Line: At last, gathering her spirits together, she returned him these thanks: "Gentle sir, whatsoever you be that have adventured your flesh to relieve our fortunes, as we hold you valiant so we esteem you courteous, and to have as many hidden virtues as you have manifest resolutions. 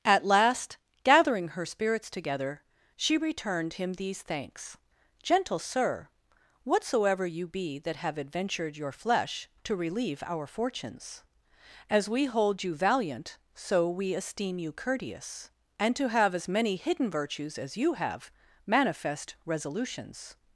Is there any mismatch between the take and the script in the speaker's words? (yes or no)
no